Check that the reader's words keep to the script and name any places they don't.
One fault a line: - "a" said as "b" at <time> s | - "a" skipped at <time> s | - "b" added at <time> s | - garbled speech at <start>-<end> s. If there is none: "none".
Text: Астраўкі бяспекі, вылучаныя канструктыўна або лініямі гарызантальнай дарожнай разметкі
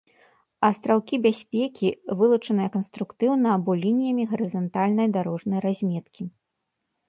none